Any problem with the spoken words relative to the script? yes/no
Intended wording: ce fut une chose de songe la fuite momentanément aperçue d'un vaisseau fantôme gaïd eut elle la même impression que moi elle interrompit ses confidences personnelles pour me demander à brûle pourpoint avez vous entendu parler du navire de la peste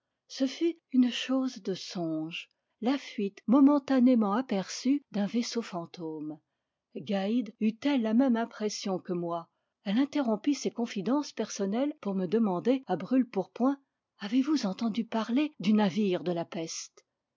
no